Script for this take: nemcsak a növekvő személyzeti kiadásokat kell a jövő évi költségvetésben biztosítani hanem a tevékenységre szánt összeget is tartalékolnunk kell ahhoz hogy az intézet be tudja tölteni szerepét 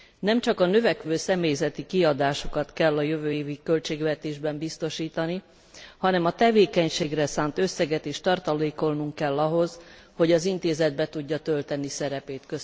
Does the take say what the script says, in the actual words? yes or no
yes